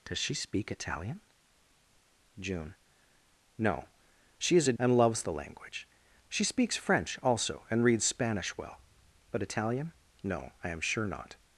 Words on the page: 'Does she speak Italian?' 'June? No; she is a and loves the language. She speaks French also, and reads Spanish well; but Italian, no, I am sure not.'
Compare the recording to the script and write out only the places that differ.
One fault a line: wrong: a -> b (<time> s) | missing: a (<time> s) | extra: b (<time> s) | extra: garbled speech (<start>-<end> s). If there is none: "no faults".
no faults